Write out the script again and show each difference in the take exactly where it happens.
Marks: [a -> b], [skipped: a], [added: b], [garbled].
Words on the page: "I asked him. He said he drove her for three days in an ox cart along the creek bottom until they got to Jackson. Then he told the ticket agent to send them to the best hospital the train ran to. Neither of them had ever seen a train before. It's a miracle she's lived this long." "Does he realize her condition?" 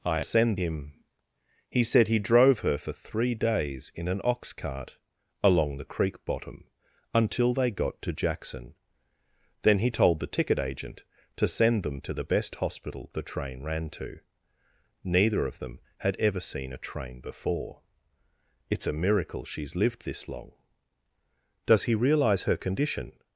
"I [asked -> send] him. He said he drove her for three days in an ox cart along the creek bottom until they got to Jackson. Then he told the ticket agent to send them to the best hospital the train ran to. Neither of them had ever seen a train before. It's a miracle she's lived this long." "Does he realize her condition?"